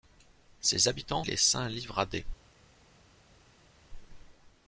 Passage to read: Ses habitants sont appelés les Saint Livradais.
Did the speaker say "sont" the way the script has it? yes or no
no